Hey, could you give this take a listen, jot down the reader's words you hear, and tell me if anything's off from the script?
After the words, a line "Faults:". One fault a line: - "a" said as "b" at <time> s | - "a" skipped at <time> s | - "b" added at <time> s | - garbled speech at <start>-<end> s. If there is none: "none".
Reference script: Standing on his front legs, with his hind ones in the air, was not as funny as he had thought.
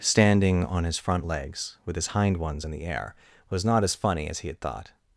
Standing on his front legs, with his hind ones in the air, was not as funny as he had thought.
Faults:
none